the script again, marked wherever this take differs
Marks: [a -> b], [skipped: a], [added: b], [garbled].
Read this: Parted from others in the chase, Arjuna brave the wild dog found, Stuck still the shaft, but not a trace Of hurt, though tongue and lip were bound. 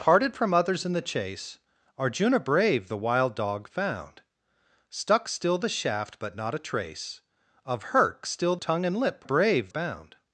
Parted from others in the chase, Arjuna brave the wild dog found, Stuck still the shaft, but not a trace Of hurt, [though -> still] tongue and lip [were -> brave] bound.